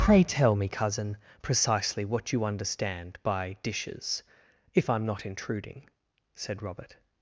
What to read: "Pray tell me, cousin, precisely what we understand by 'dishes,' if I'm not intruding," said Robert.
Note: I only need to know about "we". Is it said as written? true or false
false